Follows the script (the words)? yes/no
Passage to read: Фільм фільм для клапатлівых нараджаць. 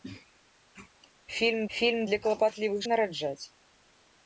yes